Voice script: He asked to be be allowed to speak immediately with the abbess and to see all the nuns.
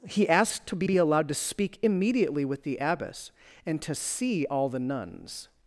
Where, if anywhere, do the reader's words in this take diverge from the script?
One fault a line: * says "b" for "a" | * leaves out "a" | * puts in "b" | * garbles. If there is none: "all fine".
all fine